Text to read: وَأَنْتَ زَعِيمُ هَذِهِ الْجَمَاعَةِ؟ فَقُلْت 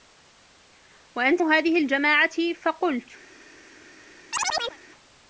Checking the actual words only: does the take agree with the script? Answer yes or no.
no